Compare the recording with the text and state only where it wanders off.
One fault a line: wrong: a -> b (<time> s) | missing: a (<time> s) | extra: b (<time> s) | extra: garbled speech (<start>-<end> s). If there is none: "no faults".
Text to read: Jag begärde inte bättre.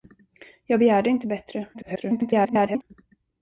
extra: garbled speech (1.7-2.8 s)